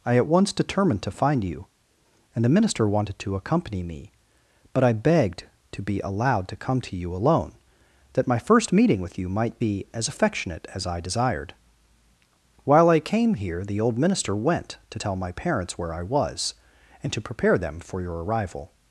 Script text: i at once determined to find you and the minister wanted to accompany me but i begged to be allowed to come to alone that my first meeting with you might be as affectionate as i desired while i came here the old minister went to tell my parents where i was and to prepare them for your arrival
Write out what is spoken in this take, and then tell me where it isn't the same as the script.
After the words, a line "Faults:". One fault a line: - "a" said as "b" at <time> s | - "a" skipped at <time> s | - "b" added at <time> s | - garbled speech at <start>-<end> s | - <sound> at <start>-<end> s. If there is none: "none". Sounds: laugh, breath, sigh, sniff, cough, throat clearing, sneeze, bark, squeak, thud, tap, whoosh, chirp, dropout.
i at once determined to find you and the minister wanted to accompany me but i begged to be allowed to come to you alone that my first meeting with you might be as affectionate as i desired while i came here the old minister went to tell my parents where i was and to prepare them for your arrival
Faults:
- "you" added at 7.0 s